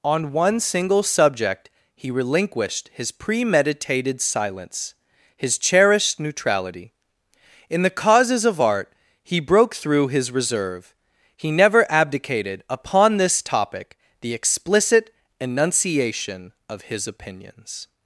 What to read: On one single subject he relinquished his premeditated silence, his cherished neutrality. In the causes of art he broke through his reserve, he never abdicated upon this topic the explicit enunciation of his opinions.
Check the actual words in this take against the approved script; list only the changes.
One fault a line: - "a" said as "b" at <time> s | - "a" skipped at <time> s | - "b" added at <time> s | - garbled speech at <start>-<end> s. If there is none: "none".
none